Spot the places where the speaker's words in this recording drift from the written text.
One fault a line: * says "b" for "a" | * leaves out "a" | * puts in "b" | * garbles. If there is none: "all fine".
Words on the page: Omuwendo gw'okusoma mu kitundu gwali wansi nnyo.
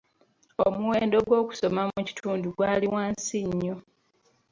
all fine